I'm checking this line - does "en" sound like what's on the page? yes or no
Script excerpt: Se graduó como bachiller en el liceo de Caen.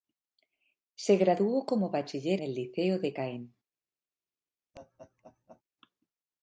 no